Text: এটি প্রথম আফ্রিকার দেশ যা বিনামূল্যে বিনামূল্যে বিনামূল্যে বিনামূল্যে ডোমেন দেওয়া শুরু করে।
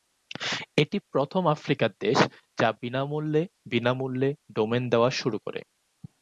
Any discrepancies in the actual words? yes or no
yes